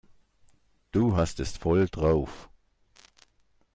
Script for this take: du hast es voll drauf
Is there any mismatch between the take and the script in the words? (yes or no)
no